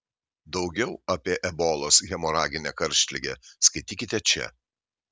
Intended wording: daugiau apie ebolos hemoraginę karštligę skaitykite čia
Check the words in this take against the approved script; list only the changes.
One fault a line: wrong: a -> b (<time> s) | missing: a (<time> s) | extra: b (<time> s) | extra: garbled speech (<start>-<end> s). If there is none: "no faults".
no faults